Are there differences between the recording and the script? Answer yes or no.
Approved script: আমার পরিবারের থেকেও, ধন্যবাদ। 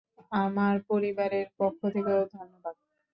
yes